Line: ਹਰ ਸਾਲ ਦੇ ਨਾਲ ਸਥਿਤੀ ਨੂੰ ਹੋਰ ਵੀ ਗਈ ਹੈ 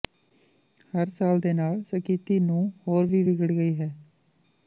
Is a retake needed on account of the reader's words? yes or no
yes